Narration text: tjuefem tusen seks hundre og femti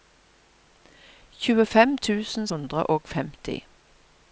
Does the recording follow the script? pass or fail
fail